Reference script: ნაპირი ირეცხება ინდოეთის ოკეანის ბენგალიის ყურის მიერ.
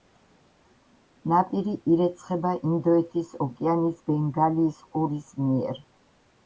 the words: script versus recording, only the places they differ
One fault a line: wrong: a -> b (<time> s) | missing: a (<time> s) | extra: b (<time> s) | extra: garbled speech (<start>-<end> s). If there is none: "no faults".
no faults